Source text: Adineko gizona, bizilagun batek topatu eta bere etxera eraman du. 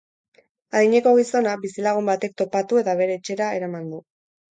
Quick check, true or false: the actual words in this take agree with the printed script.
true